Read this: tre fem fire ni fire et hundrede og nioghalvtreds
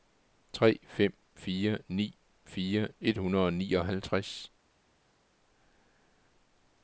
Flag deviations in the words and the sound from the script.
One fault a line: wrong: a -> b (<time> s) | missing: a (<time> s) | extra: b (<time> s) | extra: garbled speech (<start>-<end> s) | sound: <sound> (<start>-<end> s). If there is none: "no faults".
no faults